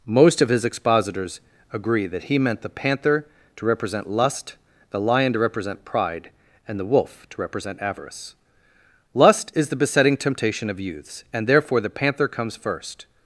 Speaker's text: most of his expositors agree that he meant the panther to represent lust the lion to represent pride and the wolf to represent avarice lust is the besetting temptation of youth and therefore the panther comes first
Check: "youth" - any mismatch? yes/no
yes